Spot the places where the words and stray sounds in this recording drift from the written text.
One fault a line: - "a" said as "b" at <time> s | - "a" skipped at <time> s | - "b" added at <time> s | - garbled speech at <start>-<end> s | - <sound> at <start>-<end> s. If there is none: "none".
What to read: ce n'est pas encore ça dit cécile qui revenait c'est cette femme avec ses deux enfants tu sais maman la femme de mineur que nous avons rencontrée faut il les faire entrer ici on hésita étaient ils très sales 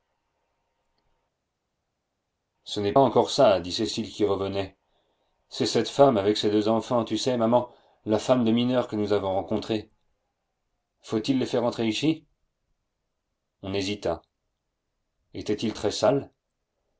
- "pas" skipped at 2.9 s